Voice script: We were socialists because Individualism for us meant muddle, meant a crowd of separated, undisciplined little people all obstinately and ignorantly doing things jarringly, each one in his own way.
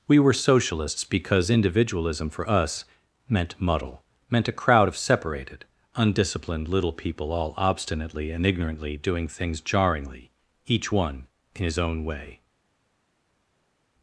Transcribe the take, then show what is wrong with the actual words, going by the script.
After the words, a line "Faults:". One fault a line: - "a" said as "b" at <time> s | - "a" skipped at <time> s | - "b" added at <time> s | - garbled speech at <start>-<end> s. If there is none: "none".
We were socialists because Individualism for us meant muddle, meant a crowd of separated, undisciplined little people all obstinately and ignorantly doing things jarringly, each one in his own way.
Faults:
none